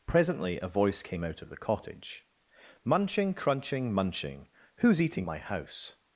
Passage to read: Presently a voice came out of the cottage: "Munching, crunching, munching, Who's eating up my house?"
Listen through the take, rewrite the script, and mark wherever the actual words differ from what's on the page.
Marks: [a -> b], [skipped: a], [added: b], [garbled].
Presently a voice came out of the cottage: "Munching, crunching, munching, Who's eating [skipped: up] my house?"